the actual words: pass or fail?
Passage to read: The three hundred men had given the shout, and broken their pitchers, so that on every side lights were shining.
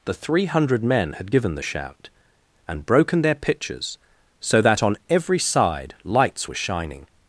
pass